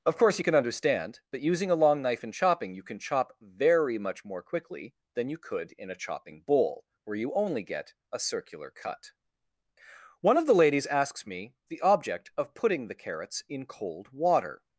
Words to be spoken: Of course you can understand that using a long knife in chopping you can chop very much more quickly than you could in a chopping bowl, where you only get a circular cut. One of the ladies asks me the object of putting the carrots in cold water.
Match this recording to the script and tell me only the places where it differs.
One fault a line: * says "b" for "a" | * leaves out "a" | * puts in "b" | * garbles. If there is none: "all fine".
all fine